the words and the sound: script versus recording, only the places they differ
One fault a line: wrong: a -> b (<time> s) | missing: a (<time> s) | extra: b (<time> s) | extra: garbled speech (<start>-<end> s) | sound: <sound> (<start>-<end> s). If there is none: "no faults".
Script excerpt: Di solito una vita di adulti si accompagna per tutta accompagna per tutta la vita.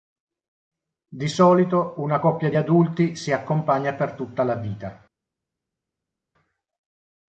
wrong: vita -> coppia (2.2 s)
missing: accompagna per tutta (4.4 s)